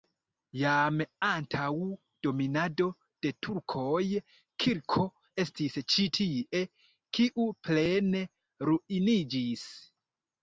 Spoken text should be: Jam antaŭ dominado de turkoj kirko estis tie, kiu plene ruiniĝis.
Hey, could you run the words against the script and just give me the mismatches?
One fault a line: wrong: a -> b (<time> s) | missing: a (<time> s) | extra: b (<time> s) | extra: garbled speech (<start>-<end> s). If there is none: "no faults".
extra: ĉi (6.0 s)